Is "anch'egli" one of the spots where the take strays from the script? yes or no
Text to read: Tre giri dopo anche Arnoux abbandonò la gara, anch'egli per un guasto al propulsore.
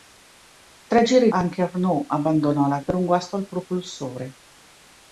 yes